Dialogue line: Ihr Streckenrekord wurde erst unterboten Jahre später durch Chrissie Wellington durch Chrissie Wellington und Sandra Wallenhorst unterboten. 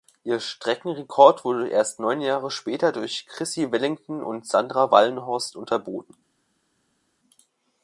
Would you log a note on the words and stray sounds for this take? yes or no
yes